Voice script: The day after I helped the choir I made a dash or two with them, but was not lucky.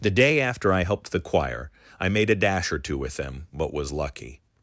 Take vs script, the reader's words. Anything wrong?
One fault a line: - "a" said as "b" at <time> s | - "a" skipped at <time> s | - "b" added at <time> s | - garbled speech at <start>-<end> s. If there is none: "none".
- "not" skipped at 3.9 s